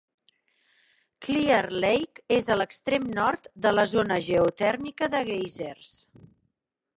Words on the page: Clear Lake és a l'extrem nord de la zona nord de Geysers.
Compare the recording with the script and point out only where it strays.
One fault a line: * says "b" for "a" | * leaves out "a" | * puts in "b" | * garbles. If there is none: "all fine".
* says "geotèrmica" for "nord"